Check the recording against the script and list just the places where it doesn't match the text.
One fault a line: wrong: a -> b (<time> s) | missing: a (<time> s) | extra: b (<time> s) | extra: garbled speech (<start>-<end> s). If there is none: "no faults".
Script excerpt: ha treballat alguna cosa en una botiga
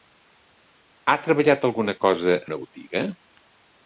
missing: en (2.4 s)